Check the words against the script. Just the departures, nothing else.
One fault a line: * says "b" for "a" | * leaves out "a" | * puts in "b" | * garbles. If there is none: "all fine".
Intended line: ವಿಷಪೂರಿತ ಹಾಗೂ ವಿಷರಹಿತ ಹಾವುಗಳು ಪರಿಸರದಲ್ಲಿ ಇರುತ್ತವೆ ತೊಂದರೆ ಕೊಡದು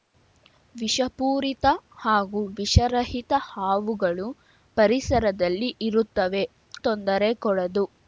all fine